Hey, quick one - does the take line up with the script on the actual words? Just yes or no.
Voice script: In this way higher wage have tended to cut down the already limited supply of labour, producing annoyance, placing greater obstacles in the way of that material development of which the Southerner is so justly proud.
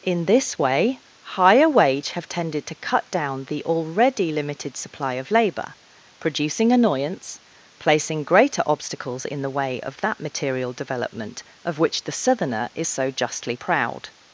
yes